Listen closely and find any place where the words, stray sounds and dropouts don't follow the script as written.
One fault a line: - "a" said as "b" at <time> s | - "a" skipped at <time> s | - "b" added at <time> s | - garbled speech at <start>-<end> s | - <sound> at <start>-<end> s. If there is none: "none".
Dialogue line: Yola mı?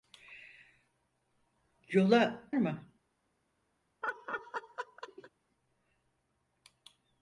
- laugh at 4.0-5.3 s